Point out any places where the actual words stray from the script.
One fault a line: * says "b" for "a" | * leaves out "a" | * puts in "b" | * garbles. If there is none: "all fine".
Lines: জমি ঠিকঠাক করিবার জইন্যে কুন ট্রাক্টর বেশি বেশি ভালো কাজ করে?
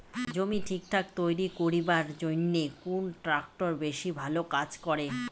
* puts in "তৈরি"
* leaves out "বেশি"